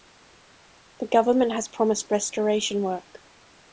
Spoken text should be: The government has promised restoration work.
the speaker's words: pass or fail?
pass